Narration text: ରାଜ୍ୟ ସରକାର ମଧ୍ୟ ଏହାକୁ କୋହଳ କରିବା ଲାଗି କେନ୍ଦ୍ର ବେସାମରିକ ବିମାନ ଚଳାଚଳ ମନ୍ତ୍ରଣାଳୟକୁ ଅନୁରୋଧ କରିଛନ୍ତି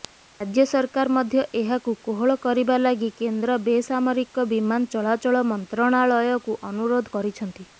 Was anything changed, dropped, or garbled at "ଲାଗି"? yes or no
no